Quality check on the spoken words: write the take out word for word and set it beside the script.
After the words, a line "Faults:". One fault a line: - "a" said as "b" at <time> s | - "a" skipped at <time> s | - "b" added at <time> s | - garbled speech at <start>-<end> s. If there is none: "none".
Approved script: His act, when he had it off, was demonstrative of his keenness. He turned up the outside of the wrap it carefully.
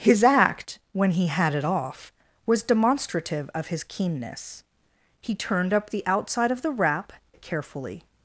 His act, when he had it off, was demonstrative of his keenness. He turned up the outside of the wrap it carefully.
Faults:
none